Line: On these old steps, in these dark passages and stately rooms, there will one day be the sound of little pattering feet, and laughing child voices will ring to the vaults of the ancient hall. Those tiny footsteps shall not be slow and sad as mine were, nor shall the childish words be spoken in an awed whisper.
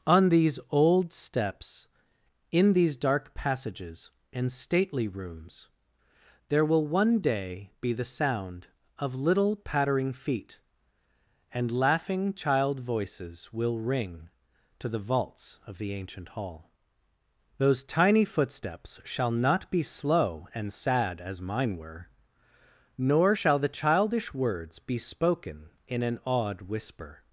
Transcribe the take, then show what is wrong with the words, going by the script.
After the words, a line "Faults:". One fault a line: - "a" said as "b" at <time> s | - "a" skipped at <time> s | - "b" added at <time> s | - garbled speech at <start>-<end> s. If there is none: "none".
On these old steps, in these dark passages and stately rooms, there will one day be the sound of little pattering feet, and laughing child voices will ring to the vaults of the ancient hall. Those tiny footsteps shall not be slow and sad as mine were, nor shall the childish words be spoken in an awed whisper.
Faults:
none